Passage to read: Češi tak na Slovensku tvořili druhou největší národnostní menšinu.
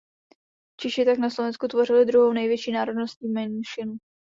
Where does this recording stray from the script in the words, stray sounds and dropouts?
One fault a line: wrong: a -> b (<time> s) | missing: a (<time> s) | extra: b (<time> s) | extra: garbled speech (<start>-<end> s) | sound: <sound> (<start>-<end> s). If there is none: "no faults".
no faults